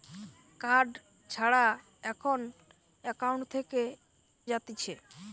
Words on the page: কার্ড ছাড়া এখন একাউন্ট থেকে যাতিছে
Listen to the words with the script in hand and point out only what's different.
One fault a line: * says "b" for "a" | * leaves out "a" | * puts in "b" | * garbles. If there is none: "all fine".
all fine